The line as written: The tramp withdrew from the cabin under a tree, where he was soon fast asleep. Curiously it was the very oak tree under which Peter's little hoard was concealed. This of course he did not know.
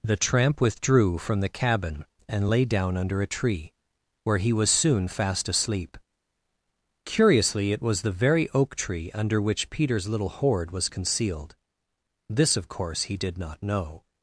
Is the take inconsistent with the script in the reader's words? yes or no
yes